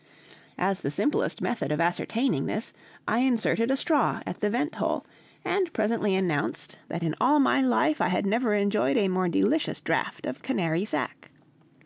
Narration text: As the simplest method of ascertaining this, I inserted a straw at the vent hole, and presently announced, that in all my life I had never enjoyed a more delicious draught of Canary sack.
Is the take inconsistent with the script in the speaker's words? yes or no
no